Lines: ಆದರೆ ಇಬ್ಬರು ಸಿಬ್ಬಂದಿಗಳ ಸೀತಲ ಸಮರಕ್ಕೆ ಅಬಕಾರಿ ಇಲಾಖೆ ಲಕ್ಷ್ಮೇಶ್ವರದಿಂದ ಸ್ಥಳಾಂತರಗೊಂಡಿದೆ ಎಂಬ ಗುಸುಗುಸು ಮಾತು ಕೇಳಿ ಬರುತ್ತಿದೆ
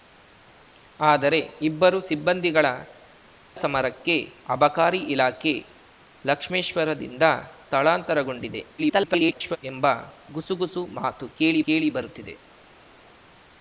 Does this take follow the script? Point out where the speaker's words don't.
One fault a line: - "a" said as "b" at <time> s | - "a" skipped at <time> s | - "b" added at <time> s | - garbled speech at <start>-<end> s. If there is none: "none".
- "ಸೀತಲ" skipped at 2.6 s
- garbled speech at 8.8-9.6 s
- "ಕೇಳಿ" added at 11.7 s